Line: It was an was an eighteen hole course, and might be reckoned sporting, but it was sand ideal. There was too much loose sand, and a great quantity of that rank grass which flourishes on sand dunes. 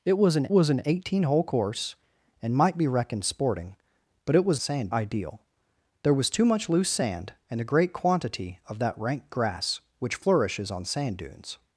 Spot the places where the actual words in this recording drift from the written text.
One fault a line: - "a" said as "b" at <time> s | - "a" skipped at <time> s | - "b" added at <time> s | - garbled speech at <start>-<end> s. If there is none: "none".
none